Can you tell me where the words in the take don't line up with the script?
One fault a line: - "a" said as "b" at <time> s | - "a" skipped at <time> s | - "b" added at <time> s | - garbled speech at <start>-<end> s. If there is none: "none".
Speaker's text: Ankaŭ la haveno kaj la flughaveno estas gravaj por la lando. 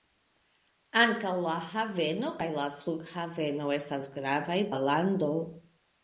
- "por" skipped at 4.6 s